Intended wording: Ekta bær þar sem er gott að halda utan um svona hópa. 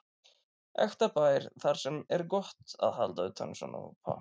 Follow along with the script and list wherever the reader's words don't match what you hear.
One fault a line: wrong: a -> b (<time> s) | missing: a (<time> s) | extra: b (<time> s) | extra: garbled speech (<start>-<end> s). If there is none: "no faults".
no faults